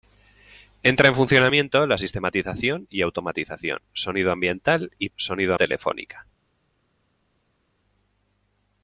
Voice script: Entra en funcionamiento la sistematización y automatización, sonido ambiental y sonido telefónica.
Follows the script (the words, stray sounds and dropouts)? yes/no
yes